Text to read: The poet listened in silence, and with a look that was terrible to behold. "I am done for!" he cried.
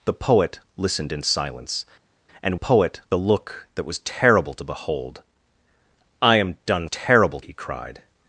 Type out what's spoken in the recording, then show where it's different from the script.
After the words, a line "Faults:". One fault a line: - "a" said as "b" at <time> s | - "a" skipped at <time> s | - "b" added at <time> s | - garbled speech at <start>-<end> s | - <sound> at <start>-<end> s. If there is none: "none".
The poet listened in silence, and poet a look that was terrible to behold. "I am done terrible!" he cried.
Faults:
- "with" said as "poet" at 2.5 s
- "for" said as "terrible" at 6.9 s